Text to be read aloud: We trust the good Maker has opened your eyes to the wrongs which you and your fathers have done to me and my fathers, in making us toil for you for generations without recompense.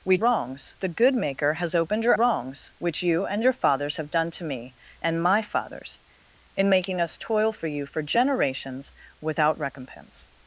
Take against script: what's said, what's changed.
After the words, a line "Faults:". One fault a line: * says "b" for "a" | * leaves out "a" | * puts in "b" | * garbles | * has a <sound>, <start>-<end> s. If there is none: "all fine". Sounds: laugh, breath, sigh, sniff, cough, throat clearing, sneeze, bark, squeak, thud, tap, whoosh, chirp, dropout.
We wrongs the good Maker has opened your wrongs which you and your fathers have done to me and my fathers, in making us toil for you for generations without recompense.
Faults:
* says "wrongs" for "trust"
* leaves out "eyes to the"